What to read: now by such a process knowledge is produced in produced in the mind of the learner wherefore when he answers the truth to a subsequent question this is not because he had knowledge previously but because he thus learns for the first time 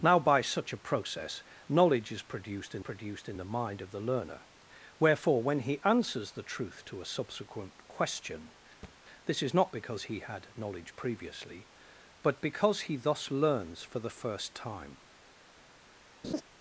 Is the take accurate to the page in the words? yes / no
yes